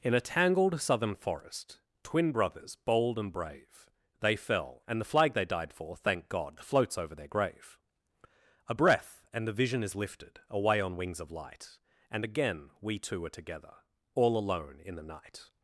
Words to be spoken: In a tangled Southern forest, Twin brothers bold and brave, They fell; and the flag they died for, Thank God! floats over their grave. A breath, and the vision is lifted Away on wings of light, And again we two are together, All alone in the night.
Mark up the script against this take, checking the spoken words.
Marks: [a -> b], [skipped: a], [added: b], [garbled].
In a tangled Southern forest, Twin brothers bold and brave, They fell; and the flag they died for, Thank God! floats over their grave. A breath, and the vision is lifted Away on wings of light, And again we two are together, All alone in the night.